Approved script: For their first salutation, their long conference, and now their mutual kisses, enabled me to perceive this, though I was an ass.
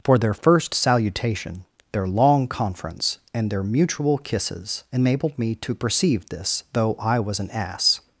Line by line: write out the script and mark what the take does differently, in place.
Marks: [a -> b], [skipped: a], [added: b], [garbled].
For their first salutation, their long conference, and [skipped: now] their mutual kisses, enabled me to perceive this, though I was an ass.